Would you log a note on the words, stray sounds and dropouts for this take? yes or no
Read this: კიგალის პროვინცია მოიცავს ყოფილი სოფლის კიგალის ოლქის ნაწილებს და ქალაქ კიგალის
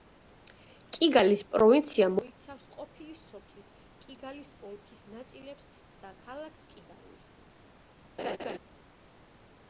yes